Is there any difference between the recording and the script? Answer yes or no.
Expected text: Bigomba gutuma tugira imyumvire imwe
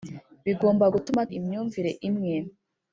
yes